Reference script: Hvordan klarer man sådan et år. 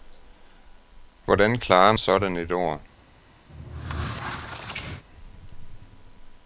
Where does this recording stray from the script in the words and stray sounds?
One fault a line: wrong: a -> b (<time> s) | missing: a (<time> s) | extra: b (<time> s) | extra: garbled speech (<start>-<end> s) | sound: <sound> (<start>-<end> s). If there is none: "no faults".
missing: man (1.9 s)
sound: squeak (3.5-5.0 s)